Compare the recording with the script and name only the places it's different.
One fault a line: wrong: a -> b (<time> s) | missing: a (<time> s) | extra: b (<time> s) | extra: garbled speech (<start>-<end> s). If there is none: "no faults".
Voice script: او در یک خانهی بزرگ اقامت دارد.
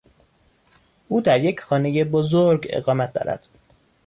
no faults